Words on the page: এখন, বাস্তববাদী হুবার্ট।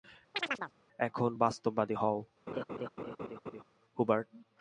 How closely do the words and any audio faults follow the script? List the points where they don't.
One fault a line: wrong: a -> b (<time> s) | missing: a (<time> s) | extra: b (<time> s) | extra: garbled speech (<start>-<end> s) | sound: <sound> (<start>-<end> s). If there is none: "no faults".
sound: chirp (0.3-0.7 s)
extra: হও (1.9 s)
sound: laugh (2.5-3.6 s)